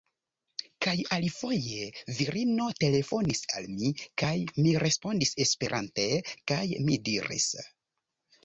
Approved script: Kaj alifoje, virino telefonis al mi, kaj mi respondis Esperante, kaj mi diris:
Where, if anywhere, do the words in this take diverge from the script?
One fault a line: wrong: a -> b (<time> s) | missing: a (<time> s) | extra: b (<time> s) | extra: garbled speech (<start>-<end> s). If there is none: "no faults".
no faults